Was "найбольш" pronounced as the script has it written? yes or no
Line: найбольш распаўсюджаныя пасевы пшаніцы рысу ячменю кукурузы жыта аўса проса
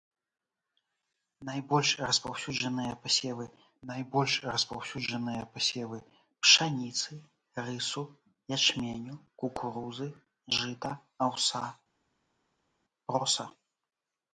yes